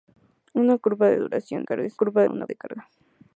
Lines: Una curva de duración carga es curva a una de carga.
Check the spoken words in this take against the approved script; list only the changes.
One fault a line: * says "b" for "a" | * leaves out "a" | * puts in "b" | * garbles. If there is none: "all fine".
all fine